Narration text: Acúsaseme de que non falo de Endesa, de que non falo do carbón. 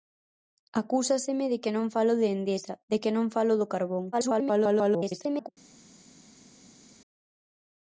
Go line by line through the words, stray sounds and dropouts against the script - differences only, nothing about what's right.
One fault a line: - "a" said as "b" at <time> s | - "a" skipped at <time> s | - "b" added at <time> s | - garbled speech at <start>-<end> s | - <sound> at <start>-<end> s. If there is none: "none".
- garbled speech at 4.1-5.5 s